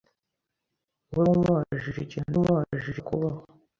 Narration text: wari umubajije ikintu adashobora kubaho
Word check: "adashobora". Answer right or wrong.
wrong